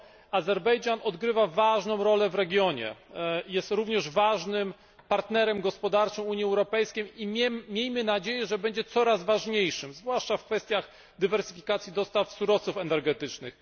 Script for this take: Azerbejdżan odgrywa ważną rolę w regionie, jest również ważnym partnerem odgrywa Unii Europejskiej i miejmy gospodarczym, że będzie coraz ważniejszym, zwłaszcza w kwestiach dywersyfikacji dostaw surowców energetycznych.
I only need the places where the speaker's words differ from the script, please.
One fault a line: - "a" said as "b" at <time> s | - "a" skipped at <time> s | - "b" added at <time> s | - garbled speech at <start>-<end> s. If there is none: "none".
- "odgrywa" said as "gospodarczym" at 5.6 s
- "gospodarczym" said as "nadzieję" at 8.0 s